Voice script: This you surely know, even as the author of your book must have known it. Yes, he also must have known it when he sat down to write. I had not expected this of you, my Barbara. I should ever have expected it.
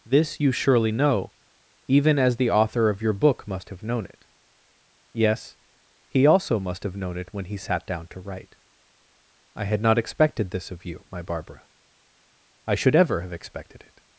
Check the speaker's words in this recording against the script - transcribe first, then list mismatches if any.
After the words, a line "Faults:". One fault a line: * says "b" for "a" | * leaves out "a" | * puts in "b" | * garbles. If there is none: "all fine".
This you surely know, even as the author of your book must have known it. Yes, he also must have known it when he sat down to write. I had not expected this of you, my Barbara. I should ever have expected it.
Faults:
all fine